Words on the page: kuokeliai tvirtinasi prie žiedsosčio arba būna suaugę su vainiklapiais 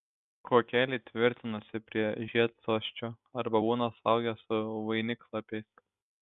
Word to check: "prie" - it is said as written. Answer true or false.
true